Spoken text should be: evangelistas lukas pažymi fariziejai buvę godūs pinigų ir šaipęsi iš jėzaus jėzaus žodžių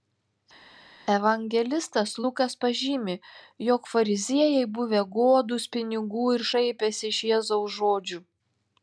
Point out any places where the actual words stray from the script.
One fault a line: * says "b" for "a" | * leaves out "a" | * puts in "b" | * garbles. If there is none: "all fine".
* puts in "jog"
* leaves out "jėzaus"